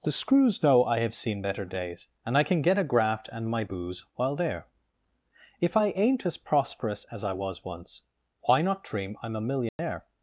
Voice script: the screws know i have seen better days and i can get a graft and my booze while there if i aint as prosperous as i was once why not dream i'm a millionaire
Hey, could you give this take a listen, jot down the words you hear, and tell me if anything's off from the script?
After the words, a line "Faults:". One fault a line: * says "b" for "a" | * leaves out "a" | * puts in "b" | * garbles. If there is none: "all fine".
the screws know i have seen better days and i can get a graft and my booze while there if i aint as prosperous as i was once why not dream i'm a millionaire
Faults:
all fine